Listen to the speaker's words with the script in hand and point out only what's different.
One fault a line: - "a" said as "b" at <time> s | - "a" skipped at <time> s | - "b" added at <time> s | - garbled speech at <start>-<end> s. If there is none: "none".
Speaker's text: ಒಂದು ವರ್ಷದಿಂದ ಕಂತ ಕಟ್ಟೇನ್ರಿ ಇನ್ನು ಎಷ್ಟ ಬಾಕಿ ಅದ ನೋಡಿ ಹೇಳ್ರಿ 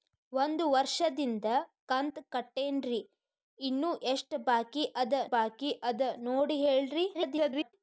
- "ಬಾಕಿ ಅದ" added at 5.3 s
- garbled speech at 7.1-7.7 s